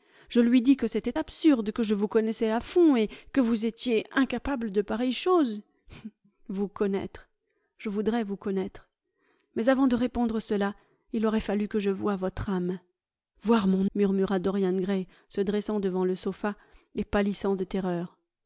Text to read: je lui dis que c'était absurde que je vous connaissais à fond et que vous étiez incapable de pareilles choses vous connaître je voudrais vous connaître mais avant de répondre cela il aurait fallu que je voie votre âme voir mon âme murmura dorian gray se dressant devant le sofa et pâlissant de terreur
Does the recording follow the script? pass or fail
fail